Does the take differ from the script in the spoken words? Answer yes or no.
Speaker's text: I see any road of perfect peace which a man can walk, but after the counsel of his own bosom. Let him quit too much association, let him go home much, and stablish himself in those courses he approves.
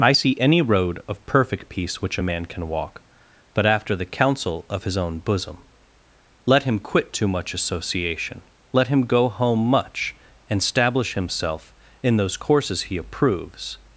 no